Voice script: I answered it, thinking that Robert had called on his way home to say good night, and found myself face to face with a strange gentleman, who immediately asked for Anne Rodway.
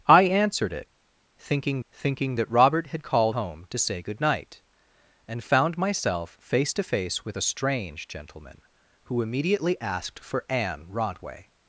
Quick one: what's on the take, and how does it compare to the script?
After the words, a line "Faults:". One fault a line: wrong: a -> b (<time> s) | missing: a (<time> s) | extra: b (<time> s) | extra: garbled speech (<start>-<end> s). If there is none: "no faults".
I answered it, thinking thinking that Robert had called home to say good night, and found myself face to face with a strange gentleman, who immediately asked for Anne Rodway.
Faults:
extra: thinking (1.9 s)
missing: on his way (3.4 s)